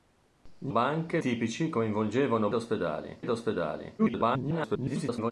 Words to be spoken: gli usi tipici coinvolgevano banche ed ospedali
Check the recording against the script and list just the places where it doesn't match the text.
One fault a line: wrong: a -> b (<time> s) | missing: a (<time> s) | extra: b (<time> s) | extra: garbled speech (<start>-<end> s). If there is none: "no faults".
wrong: usi -> banche (0.7 s)
wrong: banche -> ospedali (2.5 s)
extra: garbled speech (4.0-5.3 s)